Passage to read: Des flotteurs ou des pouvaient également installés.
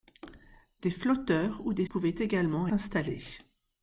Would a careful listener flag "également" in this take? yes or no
no